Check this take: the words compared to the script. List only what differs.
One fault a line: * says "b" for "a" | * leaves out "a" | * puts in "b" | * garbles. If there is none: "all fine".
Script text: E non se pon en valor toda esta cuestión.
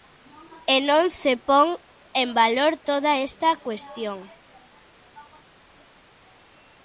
all fine